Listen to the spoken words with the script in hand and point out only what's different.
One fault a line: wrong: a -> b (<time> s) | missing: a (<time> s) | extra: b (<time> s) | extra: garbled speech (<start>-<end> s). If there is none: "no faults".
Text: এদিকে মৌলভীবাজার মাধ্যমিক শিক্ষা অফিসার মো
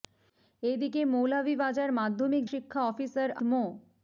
no faults